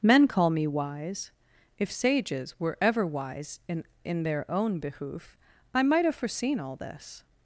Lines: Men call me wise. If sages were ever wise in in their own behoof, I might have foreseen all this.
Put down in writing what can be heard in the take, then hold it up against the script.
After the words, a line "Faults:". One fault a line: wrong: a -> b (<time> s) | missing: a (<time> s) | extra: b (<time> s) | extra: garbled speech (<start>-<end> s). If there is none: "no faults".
Men call me wise. If sages were ever wise in in their own behoof, I might have foreseen all this.
Faults:
no faults